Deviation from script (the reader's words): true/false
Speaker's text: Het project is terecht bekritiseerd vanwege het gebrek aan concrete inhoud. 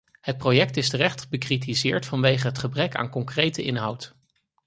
false